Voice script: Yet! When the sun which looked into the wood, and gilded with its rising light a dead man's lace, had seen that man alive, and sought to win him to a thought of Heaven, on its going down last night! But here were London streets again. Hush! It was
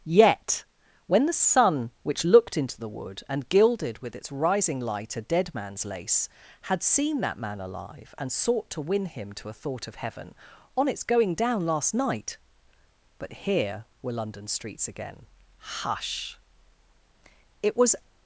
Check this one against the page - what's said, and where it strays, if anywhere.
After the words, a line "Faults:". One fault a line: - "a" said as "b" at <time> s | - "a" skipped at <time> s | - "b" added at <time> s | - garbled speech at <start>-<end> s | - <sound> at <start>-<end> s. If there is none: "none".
Yet! When the sun which looked into the wood, and gilded with its rising light a dead man's lace, had seen that man alive, and sought to win him to a thought of Heaven, on its going down last night! But here were London streets again. Hush! It was
Faults:
none